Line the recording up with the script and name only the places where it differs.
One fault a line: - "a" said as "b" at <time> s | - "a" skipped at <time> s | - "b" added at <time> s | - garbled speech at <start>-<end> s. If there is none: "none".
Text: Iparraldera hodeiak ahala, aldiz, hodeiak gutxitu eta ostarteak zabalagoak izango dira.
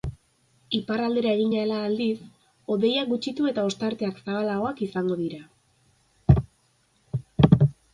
- "hodeiak" said as "egin" at 1.4 s